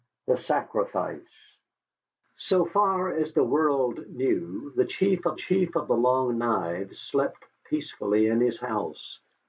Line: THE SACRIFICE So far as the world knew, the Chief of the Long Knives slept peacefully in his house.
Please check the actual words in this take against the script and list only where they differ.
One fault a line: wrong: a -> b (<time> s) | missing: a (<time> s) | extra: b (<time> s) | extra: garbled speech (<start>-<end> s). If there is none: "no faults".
extra: Chief of (5.3 s)